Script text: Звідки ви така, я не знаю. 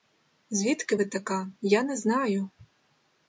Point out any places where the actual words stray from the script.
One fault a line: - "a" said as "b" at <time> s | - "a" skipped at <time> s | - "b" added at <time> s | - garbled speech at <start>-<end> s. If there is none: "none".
none